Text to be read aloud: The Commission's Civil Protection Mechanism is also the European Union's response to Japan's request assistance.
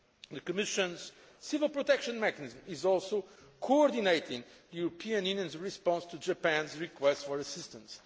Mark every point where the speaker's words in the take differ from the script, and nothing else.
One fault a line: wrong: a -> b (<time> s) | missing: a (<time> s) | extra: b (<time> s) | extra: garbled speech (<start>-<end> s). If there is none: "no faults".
extra: coordinating (3.6 s)
extra: for (7.2 s)